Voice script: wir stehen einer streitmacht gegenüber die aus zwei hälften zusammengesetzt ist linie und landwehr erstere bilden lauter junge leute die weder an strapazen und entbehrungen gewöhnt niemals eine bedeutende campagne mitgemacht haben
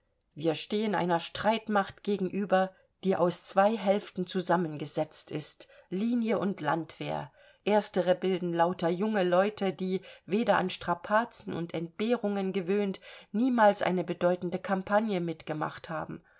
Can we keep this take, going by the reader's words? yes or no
yes